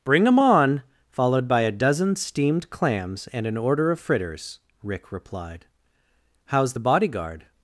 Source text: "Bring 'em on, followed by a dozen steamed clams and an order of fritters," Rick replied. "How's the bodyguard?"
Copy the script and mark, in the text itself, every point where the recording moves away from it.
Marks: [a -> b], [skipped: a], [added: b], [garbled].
"Bring 'em on, followed by a dozen steamed clams and an order of fritters," Rick replied. "How's the bodyguard?"